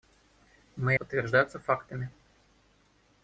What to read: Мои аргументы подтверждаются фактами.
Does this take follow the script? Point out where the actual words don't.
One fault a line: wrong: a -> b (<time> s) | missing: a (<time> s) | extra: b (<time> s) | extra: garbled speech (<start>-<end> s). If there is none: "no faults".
missing: аргументы (1.0 s)